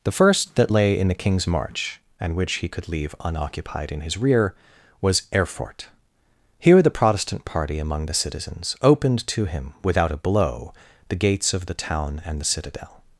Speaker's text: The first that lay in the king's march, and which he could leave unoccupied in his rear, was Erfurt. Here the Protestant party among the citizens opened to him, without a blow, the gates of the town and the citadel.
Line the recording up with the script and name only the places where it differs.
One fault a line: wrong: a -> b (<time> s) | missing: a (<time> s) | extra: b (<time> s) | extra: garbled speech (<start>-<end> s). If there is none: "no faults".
no faults